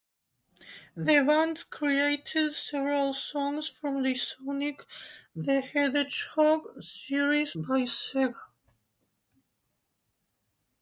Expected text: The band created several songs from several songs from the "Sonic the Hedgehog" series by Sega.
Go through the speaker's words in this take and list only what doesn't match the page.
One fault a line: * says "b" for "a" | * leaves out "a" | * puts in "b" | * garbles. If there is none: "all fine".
* leaves out "several songs from"